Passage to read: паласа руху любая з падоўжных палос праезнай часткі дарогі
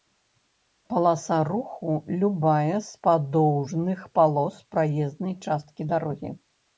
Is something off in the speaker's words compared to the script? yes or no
no